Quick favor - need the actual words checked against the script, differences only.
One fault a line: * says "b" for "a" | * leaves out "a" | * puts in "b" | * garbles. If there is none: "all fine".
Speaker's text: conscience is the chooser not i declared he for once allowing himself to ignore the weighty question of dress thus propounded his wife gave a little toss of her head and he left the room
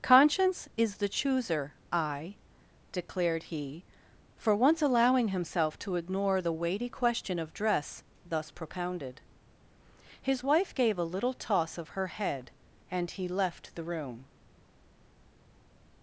* leaves out "not"